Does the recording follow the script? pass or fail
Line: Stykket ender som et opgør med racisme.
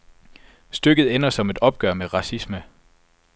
pass